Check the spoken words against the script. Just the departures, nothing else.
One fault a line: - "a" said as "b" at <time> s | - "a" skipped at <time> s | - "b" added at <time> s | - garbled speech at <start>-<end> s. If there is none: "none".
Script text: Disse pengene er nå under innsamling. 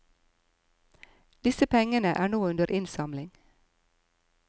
none